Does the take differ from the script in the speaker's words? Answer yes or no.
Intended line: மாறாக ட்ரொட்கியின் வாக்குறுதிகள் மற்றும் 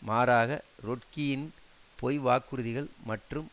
yes